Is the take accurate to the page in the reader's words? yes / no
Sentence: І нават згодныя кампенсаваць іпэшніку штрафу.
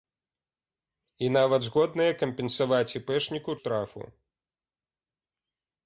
yes